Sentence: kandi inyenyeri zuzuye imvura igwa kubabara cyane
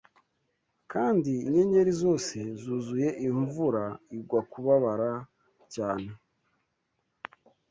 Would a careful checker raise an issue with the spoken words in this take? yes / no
yes